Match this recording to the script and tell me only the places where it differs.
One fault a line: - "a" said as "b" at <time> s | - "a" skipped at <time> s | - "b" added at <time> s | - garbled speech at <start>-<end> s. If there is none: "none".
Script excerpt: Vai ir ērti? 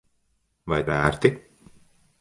none